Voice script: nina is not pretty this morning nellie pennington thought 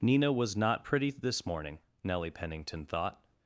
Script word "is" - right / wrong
wrong